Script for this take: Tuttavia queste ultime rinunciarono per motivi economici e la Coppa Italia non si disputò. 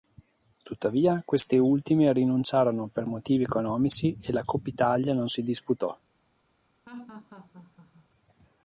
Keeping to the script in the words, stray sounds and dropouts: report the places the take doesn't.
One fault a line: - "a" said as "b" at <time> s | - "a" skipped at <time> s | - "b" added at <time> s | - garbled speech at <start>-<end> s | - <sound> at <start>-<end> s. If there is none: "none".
- laugh at 6.9-8.1 s